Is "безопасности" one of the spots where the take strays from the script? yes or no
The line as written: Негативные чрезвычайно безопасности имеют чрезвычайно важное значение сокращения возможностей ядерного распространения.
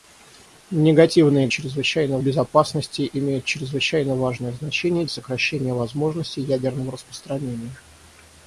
no